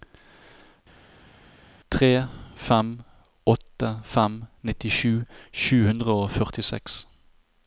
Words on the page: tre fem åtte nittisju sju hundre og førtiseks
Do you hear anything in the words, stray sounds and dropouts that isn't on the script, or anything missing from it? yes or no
yes